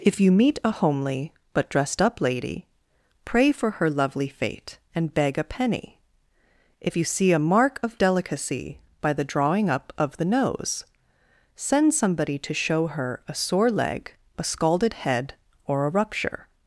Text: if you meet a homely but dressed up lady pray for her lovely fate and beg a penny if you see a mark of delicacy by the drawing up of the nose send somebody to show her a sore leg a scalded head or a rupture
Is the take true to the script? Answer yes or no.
yes